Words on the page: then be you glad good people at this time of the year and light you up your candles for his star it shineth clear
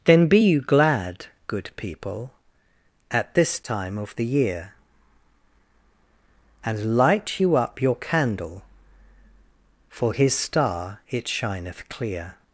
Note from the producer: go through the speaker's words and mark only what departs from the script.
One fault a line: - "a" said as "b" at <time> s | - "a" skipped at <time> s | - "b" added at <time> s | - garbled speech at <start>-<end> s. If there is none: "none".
- "candles" said as "candle" at 8.0 s